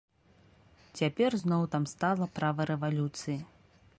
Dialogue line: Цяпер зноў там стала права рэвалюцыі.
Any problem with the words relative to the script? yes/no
no